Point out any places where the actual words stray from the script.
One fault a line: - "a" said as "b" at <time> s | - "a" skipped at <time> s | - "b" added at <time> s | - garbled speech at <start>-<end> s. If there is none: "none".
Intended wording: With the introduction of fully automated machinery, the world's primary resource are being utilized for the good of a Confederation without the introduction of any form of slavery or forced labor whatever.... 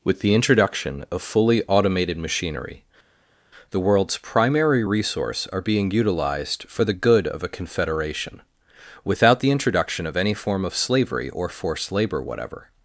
none